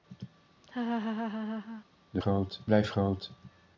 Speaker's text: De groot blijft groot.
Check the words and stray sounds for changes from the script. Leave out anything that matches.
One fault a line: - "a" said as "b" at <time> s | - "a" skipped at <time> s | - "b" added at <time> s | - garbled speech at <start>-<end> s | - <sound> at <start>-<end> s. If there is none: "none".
- laugh at 0.6-1.8 s